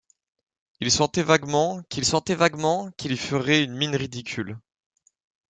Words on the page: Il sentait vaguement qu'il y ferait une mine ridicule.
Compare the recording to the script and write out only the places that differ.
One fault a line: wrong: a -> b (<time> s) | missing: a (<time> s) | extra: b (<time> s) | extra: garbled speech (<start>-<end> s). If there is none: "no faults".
extra: sentait vaguement qu'il (2.0 s)